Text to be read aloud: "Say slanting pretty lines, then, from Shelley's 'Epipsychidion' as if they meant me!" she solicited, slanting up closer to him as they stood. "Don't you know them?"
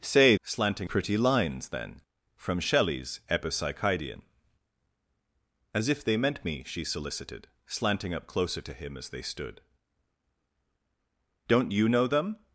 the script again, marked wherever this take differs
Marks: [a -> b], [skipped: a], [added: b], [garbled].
"Say slanting pretty lines, then, from Shelley's 'Epipsychidion' as if they meant me!" she solicited, slanting up closer to him as they stood. "Don't you know them?"